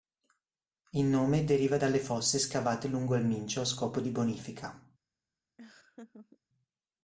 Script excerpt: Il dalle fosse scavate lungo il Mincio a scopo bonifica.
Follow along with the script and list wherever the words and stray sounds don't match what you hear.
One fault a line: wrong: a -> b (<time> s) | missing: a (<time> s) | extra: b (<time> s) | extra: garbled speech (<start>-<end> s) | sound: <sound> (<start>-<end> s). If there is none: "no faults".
extra: nome deriva (1.1 s)
extra: di (4.0 s)
sound: laugh (5.6-6.4 s)